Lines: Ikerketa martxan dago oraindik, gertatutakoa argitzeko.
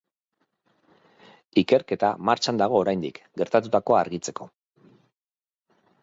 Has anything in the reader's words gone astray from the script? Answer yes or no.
no